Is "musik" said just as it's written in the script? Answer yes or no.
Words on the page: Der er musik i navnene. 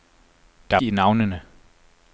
no